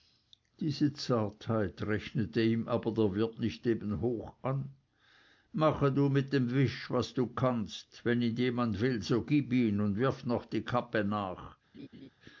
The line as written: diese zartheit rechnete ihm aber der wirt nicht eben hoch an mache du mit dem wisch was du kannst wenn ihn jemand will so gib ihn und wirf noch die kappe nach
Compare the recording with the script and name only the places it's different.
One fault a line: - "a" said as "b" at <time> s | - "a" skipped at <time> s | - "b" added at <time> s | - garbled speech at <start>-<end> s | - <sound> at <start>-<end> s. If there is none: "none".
- laugh at 11.7-12.1 s